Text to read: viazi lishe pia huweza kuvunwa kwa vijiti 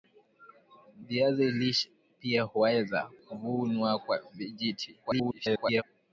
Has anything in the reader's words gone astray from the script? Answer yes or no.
yes